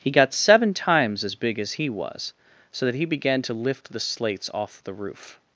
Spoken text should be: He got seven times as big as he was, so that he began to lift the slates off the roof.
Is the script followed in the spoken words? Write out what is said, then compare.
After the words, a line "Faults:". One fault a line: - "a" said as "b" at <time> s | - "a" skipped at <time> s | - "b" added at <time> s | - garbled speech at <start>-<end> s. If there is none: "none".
He got seven times as big as he was, so that he began to lift the slates off the roof.
Faults:
none